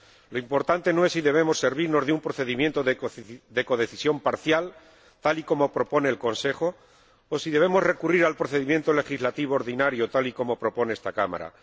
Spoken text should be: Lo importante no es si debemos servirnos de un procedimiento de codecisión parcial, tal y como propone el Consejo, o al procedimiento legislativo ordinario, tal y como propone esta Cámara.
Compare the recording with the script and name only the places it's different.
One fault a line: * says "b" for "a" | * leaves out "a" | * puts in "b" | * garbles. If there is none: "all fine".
* puts in "si debemos recurrir"